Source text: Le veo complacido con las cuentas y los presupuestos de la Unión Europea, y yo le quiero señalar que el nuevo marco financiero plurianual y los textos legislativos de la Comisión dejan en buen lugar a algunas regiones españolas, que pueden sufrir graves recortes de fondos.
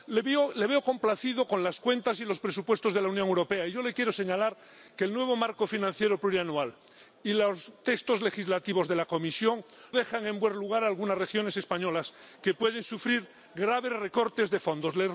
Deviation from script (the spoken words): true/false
false